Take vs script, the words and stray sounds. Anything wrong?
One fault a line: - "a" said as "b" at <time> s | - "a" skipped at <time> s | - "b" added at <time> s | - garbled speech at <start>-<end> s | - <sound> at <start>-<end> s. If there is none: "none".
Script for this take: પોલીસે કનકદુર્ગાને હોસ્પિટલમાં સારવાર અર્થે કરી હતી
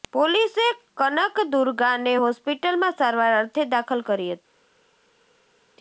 - "દાખલ" added at 3.7 s